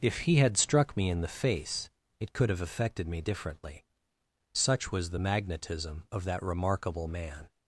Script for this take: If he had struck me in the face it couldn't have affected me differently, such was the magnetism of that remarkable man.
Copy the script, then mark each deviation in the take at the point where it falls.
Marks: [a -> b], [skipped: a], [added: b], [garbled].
If he had struck me in the face it [couldn't -> could] have affected me differently, such was the magnetism of that remarkable man.